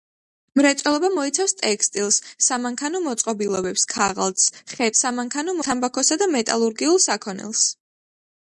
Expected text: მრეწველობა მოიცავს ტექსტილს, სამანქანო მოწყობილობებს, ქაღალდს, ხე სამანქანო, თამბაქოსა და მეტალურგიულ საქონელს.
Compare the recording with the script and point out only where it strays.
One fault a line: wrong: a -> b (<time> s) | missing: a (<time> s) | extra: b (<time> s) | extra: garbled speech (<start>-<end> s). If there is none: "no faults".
no faults